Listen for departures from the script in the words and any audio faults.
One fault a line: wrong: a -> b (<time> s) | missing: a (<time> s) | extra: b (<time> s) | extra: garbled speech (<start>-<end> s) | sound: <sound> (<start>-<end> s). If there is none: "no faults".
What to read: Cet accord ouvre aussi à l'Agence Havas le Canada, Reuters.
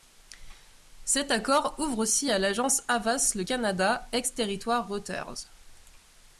extra: ex territoire (4.1 s)